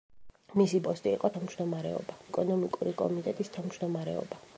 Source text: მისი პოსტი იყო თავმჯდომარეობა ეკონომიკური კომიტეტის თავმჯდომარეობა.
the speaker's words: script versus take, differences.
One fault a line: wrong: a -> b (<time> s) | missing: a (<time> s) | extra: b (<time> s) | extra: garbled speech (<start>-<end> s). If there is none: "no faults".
no faults